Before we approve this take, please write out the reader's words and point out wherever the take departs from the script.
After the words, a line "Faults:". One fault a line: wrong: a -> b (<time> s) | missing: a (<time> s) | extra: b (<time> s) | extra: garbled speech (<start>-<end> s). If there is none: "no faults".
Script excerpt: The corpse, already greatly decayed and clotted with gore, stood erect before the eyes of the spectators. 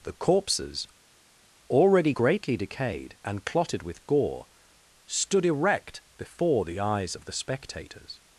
The corpses, already greatly decayed and clotted with gore, stood erect before the eyes of the spectators.
Faults:
wrong: corpse -> corpses (0.1 s)